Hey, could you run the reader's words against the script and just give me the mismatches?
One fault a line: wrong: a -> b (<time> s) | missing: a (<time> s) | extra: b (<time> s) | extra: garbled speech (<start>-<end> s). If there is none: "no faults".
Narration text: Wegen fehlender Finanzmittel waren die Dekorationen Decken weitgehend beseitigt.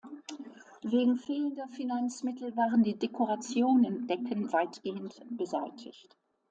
no faults